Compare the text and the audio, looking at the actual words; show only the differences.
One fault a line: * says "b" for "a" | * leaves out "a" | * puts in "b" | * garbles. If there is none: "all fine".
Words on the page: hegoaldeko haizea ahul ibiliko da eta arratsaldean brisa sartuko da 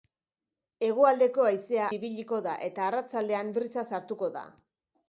* leaves out "ahul"